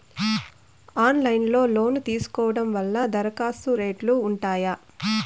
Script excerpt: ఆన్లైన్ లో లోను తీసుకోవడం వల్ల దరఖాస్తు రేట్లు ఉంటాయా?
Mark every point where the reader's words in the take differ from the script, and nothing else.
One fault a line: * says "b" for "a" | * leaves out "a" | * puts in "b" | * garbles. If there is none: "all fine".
all fine